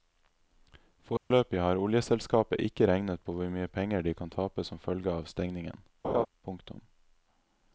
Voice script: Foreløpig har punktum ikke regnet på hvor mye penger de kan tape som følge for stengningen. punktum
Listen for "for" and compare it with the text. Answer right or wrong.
wrong